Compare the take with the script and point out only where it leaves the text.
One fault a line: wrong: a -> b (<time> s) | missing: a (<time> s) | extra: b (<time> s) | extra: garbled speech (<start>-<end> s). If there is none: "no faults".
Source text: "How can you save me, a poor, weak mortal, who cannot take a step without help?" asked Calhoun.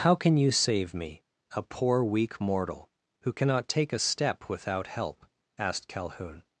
no faults